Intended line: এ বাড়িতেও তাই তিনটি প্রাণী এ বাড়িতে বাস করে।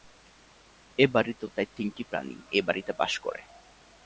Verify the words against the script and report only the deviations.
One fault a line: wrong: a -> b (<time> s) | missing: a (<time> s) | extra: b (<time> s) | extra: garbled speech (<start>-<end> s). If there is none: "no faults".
no faults